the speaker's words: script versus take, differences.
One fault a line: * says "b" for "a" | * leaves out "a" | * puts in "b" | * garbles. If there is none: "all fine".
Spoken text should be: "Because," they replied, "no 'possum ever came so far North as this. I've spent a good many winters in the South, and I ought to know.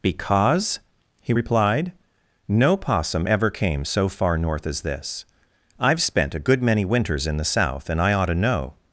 * says "he" for "they"